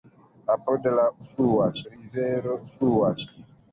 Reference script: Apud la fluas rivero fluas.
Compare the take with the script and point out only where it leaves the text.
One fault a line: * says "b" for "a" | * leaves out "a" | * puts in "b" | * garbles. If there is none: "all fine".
all fine